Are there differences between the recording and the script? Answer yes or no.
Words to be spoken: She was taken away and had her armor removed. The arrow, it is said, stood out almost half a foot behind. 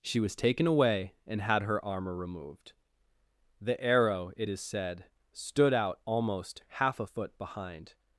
no